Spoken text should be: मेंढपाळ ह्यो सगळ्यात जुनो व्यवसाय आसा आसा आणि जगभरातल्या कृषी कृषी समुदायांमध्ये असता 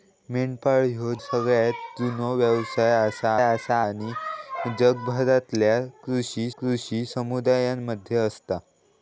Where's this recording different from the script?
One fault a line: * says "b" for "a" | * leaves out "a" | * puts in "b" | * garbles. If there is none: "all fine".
all fine